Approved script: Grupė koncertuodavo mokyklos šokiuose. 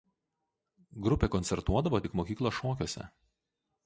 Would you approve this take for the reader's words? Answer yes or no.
no